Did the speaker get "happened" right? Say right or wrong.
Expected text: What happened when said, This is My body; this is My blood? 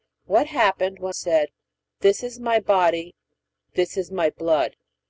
right